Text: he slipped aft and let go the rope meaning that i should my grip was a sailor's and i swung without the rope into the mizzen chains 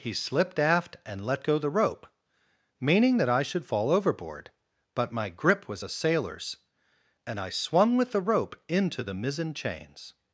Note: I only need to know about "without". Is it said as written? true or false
false